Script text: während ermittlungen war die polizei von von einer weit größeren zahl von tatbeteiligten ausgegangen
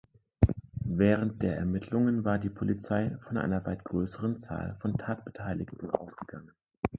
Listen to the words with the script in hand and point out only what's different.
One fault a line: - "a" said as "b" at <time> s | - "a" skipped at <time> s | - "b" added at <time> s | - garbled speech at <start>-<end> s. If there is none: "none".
- "der" added at 1.4 s
- "von" skipped at 3.4 s